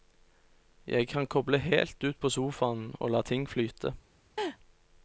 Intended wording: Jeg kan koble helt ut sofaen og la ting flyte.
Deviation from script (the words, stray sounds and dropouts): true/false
true